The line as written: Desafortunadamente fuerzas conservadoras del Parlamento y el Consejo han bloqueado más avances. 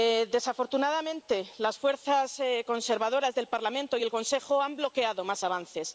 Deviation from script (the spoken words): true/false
true